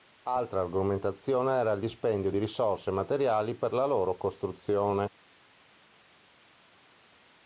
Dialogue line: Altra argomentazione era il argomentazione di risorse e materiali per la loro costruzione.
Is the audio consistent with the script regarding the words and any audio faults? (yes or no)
no